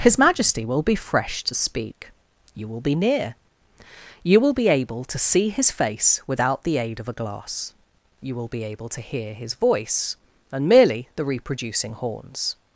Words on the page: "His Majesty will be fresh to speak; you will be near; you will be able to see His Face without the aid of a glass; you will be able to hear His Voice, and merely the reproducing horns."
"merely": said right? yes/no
yes